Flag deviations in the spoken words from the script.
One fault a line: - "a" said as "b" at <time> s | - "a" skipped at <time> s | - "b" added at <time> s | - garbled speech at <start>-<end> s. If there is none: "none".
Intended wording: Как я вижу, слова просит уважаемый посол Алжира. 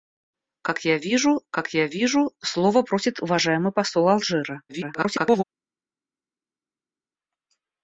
- "как я вижу" added at 1.5 s
- garbled speech at 4.7-5.4 s